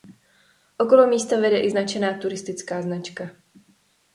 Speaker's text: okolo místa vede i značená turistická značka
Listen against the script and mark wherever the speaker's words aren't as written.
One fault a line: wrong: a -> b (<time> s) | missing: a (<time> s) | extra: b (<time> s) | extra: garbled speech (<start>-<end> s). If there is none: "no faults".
no faults